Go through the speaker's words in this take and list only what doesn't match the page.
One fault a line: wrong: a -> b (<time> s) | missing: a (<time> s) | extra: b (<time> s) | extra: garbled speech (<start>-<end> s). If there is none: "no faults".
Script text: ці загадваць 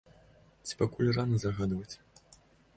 extra: пакуль рана (0.8 s)